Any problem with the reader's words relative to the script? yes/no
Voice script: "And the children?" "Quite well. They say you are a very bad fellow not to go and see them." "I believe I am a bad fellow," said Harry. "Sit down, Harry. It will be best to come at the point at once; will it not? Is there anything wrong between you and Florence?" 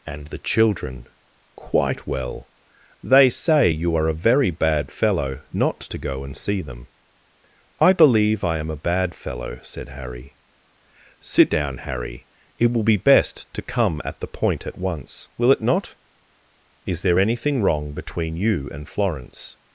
no